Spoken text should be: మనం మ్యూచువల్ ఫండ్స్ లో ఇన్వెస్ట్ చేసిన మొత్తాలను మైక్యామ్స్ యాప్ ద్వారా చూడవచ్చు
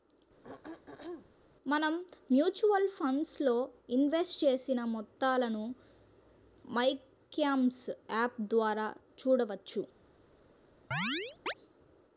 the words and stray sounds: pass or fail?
fail